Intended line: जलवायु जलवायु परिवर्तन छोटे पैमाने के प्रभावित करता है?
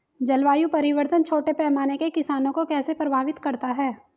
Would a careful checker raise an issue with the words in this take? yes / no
yes